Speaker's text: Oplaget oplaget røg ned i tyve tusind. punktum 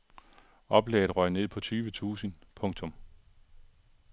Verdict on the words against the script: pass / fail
fail